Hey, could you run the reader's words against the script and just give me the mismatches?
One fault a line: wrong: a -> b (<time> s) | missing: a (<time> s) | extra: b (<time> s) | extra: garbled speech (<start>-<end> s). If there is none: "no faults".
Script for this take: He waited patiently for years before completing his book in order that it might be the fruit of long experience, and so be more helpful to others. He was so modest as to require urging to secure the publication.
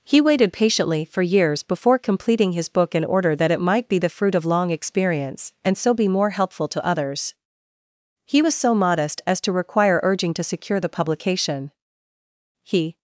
extra: He (12.6 s)